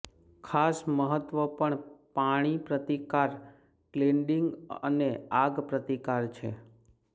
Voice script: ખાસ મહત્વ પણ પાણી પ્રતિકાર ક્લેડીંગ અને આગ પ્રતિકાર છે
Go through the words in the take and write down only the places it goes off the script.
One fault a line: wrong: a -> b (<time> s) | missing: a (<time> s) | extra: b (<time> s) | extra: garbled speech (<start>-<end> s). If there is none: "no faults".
no faults